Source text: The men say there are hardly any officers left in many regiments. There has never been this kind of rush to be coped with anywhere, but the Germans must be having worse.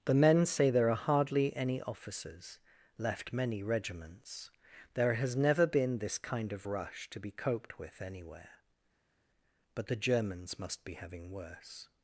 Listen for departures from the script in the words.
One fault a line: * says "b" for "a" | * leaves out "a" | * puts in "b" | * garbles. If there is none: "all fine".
* leaves out "in"